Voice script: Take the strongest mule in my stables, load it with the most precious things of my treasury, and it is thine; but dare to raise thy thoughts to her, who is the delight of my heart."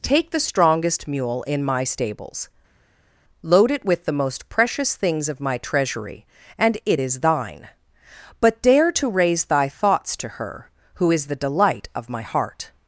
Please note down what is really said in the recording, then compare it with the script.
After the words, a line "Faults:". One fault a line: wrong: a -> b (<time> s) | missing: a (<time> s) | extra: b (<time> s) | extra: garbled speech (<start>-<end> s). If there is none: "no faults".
Take the strongest mule in my stables, load it with the most precious things of my treasury, and it is thine; but dare to raise thy thoughts to her, who is the delight of my heart."
Faults:
no faults